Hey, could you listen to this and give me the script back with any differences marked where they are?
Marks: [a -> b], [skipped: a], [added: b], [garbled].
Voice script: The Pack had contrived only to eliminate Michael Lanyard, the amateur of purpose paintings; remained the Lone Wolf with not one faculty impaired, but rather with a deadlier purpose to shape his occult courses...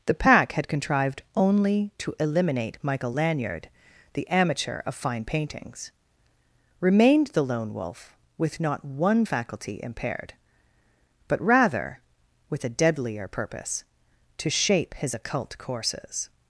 The Pack had contrived only to eliminate Michael Lanyard, the amateur of [purpose -> fine] paintings; remained the Lone Wolf with not one faculty impaired, but rather with a deadlier purpose to shape his occult courses...